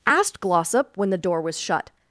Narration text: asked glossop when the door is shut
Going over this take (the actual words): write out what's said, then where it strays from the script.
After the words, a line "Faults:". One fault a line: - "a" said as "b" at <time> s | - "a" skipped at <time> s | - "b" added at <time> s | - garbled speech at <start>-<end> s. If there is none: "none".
asked glossop when the door was shut
Faults:
- "is" said as "was" at 1.4 s